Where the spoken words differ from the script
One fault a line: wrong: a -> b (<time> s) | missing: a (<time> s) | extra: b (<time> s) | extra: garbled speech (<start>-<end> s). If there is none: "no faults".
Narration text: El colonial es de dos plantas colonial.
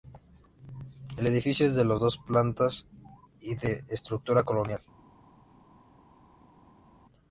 wrong: colonial -> edificio (1.3 s)
extra: y de estructura (3.4 s)